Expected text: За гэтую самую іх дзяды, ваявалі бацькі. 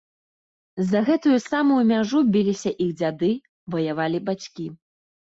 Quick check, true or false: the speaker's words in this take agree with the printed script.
false